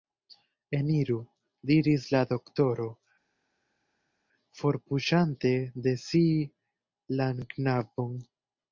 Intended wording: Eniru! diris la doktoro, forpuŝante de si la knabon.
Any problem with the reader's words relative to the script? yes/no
no